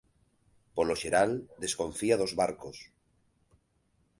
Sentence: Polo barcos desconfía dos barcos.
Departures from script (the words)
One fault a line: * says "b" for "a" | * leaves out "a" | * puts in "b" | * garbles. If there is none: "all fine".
* says "xeral" for "barcos"